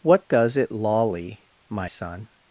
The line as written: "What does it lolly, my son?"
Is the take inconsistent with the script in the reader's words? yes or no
no